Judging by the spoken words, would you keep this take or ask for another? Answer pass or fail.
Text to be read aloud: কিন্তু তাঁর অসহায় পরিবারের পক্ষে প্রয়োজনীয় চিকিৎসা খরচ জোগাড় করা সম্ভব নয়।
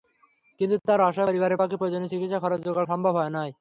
fail